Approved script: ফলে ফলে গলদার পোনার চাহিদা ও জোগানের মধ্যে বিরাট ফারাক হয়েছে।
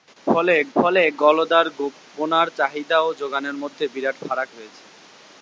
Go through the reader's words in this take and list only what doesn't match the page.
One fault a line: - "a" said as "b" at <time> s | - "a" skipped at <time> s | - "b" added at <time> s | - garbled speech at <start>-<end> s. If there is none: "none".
none